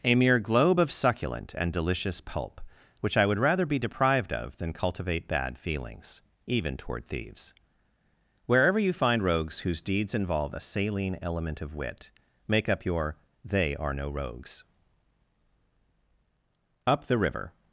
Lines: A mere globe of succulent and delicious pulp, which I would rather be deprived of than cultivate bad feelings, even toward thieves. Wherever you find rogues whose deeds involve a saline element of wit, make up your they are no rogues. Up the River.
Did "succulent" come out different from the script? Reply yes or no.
no